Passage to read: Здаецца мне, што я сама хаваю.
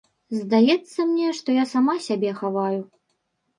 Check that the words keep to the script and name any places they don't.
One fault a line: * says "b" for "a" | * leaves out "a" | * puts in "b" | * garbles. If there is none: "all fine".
* puts in "сябе"